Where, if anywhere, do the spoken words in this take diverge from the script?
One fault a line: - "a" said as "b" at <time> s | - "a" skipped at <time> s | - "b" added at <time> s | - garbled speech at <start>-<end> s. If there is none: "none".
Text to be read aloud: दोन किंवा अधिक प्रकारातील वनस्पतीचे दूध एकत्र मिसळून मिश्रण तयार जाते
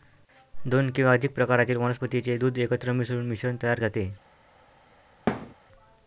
none